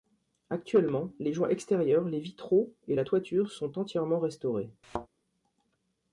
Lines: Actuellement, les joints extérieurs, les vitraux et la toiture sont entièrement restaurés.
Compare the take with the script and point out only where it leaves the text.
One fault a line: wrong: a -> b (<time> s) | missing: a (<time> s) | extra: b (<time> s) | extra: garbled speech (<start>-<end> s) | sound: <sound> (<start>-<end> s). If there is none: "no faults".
sound: thud (4.8-5.1 s)